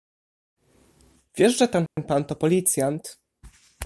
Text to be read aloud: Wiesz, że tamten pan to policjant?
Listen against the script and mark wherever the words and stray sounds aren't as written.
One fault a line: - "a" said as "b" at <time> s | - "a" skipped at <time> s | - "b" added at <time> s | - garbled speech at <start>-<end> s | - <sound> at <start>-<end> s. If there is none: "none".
- dropout at 1.9-2.0 s